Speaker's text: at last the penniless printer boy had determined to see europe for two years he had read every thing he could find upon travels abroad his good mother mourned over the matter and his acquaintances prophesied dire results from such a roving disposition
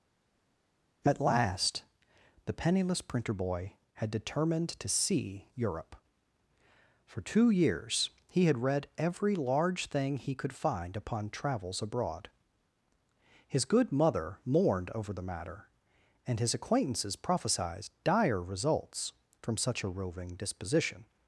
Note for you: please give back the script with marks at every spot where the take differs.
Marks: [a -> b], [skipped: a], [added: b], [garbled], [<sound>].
at last the penniless printer boy had determined to see europe for two years he had read every [added: large] thing he could find upon travels abroad his good mother mourned over the matter and his acquaintances prophesied dire results from such a roving disposition